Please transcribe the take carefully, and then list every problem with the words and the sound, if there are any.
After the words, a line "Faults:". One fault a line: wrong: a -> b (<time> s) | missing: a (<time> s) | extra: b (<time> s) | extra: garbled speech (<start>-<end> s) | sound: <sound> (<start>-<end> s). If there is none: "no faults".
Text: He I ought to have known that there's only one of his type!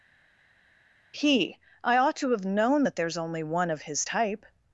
He I ought to have known that there's only one of his type!
Faults:
no faults